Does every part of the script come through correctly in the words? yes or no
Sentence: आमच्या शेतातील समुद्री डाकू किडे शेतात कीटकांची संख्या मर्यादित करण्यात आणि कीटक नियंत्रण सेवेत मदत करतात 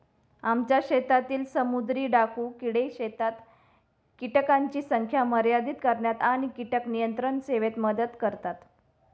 yes